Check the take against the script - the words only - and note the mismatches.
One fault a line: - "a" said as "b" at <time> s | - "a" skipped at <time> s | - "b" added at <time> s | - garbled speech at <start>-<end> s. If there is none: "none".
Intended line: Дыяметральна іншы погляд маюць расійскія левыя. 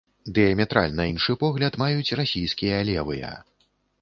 none